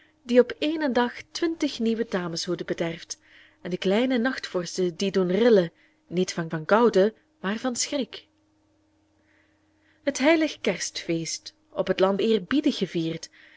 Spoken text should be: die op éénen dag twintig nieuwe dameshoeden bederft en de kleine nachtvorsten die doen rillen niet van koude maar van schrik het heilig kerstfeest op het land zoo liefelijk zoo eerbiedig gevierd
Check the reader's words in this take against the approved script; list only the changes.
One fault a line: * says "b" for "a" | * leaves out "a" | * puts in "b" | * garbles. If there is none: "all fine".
* puts in "van"
* leaves out "zoo liefelijk zoo"